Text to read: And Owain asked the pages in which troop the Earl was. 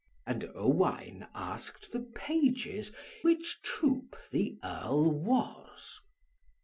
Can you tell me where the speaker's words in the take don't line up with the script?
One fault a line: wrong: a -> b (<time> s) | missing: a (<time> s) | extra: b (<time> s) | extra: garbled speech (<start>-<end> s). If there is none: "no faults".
missing: in (2.9 s)